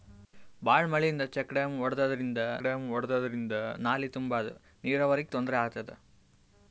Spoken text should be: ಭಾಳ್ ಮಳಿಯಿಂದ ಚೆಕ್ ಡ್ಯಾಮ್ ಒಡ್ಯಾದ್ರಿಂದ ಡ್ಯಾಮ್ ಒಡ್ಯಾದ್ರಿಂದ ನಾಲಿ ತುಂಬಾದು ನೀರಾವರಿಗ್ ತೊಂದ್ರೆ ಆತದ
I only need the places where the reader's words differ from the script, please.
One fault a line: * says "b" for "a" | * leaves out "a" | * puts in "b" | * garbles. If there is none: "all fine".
all fine